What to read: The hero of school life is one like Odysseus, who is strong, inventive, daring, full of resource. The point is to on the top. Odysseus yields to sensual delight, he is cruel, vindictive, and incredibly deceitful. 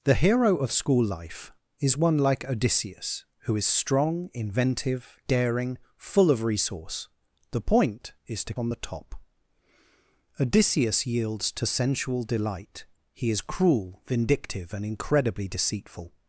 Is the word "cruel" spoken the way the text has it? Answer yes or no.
yes